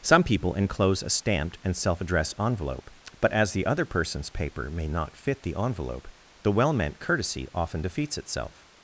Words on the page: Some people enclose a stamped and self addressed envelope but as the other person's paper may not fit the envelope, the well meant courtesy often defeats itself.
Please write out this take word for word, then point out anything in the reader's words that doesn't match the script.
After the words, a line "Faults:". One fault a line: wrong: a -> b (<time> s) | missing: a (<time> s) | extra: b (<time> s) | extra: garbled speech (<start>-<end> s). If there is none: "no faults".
Some people enclose a stamped and self addressed envelope but as the other person's paper may not fit the envelope, the well meant courtesy often defeats itself.
Faults:
no faults